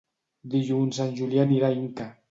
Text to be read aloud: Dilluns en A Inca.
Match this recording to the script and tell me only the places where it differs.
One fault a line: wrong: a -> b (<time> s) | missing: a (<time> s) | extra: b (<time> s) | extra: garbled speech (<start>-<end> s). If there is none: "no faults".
extra: Julià anirà (1.2 s)